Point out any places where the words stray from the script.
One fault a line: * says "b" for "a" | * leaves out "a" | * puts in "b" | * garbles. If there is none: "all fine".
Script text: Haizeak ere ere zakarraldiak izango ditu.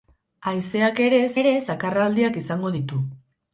all fine